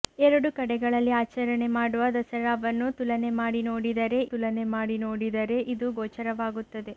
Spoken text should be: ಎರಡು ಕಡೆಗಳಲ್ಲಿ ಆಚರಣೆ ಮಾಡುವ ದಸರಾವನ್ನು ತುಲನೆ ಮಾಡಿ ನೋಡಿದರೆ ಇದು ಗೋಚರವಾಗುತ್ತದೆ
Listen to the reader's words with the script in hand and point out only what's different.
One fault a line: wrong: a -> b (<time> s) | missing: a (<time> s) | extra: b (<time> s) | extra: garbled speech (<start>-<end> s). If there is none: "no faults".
extra: ತುಲನೆ ಮಾಡಿ ನೋಡಿದರೆ (4.3 s)